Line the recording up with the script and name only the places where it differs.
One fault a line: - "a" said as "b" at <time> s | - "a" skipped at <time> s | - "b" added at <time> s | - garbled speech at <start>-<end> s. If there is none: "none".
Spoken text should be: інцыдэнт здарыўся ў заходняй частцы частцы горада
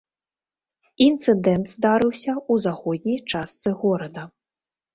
- "частцы" skipped at 3.7 s